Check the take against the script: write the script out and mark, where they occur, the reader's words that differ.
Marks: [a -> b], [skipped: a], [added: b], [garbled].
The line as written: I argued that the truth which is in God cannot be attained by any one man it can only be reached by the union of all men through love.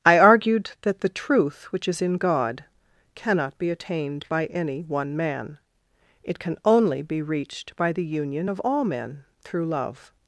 I argued that the truth which is in God cannot be attained by any one man it can only be reached by the union of all men through love.